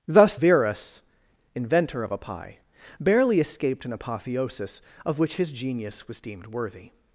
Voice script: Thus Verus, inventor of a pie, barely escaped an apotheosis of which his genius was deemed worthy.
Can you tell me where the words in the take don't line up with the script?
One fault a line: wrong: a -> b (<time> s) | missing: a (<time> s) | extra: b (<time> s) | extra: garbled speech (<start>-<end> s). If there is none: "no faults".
no faults